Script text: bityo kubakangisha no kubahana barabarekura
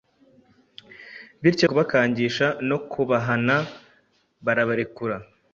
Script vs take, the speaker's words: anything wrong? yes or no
no